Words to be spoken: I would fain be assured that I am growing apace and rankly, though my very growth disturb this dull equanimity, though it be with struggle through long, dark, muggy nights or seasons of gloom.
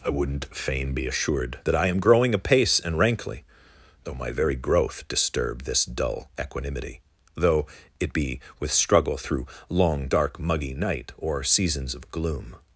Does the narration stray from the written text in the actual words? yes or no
yes